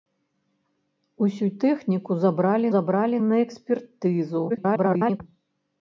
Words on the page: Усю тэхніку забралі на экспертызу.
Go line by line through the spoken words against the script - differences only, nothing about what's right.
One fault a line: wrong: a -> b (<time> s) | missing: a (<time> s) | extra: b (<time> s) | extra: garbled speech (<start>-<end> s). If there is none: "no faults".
extra: забралі (2.7 s)
extra: garbled speech (4.5-5.2 s)